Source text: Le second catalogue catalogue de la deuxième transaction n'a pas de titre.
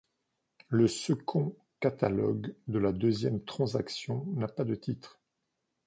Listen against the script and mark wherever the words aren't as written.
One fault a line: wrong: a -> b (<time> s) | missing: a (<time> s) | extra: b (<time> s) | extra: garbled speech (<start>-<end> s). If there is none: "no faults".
missing: catalogue (2.5 s)